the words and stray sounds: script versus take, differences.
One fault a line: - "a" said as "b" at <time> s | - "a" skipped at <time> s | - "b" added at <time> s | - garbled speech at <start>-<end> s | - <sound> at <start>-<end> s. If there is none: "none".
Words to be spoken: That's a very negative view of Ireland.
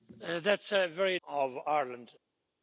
- "negative view" skipped at 1.2 s